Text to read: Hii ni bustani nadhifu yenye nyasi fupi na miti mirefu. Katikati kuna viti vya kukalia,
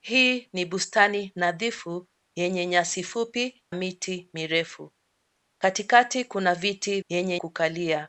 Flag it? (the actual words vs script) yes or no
yes